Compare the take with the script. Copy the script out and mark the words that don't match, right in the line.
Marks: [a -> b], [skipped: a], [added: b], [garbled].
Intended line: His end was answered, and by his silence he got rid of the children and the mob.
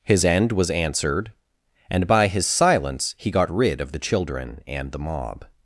His end was answered, and by his silence he got rid of the children and the mob.